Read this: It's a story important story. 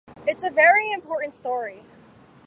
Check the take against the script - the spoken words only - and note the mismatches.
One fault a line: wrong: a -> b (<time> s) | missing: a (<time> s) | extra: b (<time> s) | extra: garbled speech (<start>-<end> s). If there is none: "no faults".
wrong: story -> very (0.5 s)